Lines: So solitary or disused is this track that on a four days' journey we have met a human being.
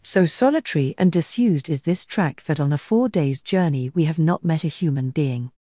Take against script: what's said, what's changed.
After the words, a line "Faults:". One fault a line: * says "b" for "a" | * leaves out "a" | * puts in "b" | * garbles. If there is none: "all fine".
So solitary and disused is this track that on a four days' journey we have not met a human being.
Faults:
* says "and" for "or"
* puts in "not"